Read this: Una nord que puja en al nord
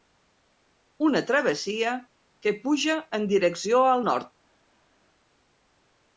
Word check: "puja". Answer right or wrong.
right